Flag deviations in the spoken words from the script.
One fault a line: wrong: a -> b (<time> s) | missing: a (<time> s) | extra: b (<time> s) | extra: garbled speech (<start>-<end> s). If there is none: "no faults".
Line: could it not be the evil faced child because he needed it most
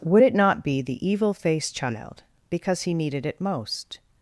wrong: could -> would (0.0 s)